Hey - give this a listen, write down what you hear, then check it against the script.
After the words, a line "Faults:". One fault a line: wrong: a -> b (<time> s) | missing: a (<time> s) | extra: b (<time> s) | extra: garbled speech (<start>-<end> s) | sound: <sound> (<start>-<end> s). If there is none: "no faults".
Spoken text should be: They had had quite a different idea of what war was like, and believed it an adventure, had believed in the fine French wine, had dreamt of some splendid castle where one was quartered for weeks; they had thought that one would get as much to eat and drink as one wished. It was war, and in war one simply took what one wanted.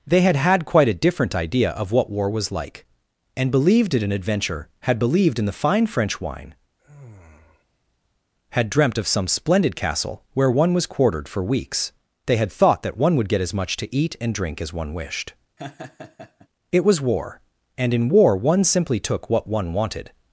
They had had quite a different idea of what war was like, and believed it an adventure, had believed in the fine French wine, had dreamt of some splendid castle where one was quartered for weeks; they had thought that one would get as much to eat and drink as one wished. It was war, and in war one simply took what one wanted.
Faults:
sound: sigh (6.7-8.3 s)
sound: laugh (15.6-16.5 s)